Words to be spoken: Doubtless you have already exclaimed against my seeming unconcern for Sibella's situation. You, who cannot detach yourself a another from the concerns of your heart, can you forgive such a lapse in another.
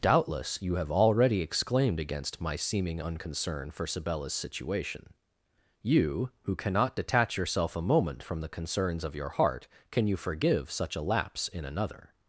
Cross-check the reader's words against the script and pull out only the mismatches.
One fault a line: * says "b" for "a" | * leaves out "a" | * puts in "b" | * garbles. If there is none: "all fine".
* says "moment" for "another"